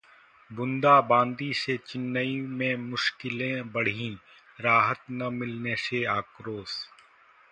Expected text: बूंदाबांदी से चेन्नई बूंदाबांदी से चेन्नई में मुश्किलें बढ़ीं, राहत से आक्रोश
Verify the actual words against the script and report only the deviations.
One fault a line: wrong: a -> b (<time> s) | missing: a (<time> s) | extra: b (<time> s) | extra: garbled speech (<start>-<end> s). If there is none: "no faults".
missing: बूंदाबांदी से चेन्नई (2.4 s)
extra: न मिलने (5.1 s)